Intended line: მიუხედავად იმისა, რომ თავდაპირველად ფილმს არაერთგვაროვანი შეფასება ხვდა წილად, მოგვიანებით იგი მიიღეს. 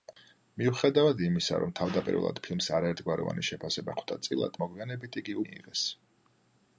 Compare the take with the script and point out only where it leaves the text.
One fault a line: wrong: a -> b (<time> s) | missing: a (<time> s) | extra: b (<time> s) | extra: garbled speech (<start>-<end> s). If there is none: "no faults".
no faults